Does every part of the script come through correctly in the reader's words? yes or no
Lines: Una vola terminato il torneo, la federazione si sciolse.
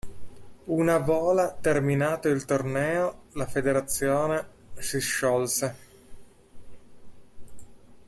yes